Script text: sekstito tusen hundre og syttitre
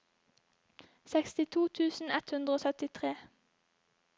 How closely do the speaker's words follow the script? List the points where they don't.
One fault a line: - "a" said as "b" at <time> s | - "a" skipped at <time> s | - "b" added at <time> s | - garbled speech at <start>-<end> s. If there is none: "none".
- "ett" added at 2.2 s